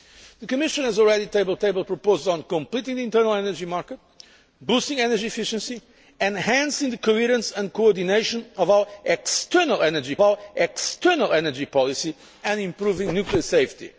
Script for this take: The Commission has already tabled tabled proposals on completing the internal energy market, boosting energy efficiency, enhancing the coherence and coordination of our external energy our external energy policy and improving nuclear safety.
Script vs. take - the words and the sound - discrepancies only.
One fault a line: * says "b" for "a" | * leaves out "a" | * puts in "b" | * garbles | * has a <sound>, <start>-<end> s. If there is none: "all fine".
all fine